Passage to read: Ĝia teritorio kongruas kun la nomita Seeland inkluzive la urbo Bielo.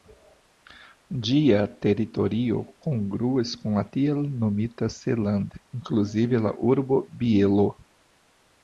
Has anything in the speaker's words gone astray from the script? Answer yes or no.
yes